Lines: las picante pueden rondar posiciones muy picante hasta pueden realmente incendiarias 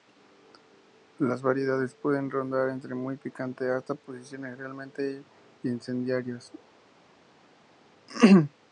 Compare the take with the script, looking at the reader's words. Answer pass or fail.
fail